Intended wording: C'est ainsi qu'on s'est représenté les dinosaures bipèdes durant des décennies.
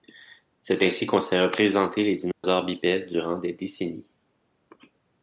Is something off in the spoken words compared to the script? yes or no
no